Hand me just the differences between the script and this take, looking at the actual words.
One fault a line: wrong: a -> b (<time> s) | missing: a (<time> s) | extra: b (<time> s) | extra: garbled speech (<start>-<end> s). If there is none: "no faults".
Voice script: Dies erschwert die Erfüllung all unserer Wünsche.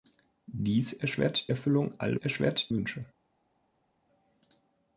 missing: die (1.5 s)
wrong: unserer -> erschwert (2.1 s)